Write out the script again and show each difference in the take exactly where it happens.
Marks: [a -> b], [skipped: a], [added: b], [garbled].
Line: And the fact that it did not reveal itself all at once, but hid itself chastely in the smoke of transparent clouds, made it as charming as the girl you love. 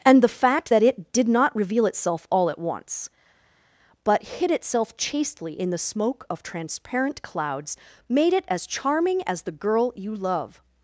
And the fact that it did not reveal itself all at once, but hid itself chastely in the smoke of transparent clouds, made it as charming as the girl you love.